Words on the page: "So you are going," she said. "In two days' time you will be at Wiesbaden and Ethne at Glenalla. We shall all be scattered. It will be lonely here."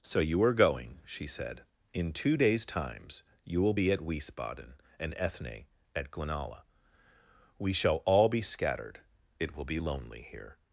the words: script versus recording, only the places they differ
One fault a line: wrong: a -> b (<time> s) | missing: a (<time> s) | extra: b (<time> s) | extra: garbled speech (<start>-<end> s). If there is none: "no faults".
wrong: time -> times (2.6 s)